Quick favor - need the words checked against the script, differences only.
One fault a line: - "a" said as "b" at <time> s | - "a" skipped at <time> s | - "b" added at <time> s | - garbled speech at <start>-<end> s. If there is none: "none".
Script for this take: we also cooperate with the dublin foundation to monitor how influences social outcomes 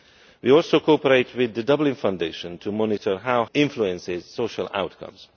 none